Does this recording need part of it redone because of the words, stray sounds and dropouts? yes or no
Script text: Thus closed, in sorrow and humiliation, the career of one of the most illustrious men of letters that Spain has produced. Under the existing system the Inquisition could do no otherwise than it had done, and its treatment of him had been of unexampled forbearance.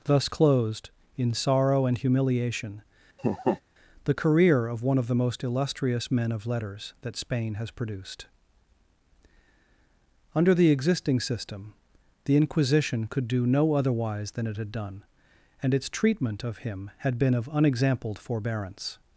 yes